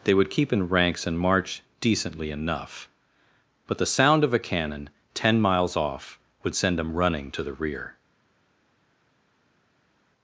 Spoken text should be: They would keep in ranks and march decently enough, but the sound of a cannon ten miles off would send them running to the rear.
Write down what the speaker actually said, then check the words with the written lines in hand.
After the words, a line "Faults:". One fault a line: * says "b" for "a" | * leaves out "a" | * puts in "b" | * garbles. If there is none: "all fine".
They would keep in ranks and march decently enough, but the sound of a cannon ten miles off would send them running to the rear.
Faults:
all fine